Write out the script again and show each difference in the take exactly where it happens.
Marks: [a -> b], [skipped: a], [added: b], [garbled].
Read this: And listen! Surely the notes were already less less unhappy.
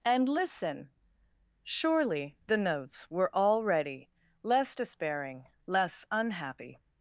And listen! Surely the notes were already less [added: despairing] less unhappy.